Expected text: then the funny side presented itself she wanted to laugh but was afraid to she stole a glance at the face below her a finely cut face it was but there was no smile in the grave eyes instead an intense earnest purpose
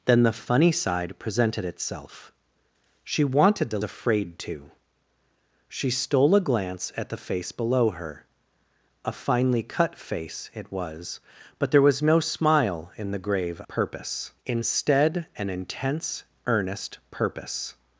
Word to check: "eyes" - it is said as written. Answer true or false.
false